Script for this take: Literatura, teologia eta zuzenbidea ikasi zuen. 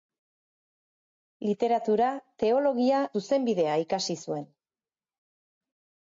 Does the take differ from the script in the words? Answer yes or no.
yes